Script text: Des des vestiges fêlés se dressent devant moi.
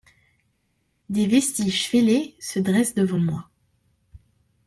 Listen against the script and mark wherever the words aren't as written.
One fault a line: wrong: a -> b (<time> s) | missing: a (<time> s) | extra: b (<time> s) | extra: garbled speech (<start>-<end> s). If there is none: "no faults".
missing: des (1.3 s)